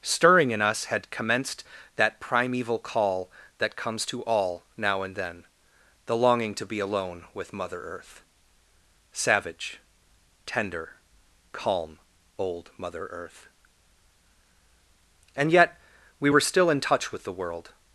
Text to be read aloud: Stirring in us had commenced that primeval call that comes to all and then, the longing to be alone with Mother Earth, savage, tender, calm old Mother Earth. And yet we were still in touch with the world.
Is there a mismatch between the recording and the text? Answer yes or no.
yes